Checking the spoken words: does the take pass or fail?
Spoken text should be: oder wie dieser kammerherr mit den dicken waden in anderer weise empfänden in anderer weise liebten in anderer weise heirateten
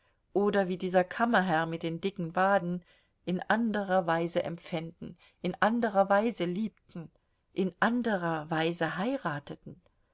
pass